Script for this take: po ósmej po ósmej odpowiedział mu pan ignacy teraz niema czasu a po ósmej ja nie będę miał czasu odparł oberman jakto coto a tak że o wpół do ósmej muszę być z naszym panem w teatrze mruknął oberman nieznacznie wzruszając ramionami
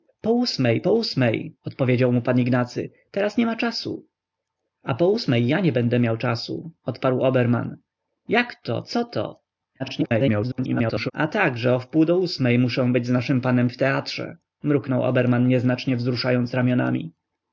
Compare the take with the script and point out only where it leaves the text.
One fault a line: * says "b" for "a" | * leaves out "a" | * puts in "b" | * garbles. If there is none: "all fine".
* garbles